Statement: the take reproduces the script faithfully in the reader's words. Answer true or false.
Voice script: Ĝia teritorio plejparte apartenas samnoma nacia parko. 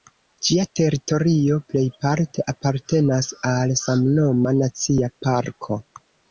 false